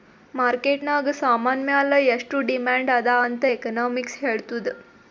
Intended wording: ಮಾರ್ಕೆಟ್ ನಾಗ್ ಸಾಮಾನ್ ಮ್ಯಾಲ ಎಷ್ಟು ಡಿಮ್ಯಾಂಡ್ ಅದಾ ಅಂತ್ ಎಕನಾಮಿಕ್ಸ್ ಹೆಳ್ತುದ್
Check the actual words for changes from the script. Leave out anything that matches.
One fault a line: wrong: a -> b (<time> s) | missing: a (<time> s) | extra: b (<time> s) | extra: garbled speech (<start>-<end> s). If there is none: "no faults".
no faults